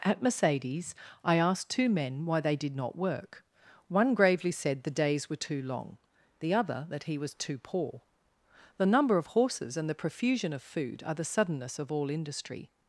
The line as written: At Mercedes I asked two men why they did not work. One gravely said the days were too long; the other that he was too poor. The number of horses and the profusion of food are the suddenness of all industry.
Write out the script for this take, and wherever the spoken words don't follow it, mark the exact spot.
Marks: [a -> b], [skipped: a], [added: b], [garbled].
At Mercedes I asked two men why they did not work. One gravely said the days were too long; the other that he was too poor. The number of horses and the profusion of food are the suddenness of all industry.